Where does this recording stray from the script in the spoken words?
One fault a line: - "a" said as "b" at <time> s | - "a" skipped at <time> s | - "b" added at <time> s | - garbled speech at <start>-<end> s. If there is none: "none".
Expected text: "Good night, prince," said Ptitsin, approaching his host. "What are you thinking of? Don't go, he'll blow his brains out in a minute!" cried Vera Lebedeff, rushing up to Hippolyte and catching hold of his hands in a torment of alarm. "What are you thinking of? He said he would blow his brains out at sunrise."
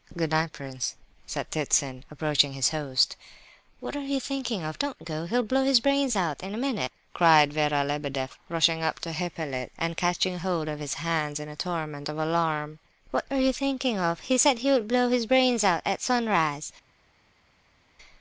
none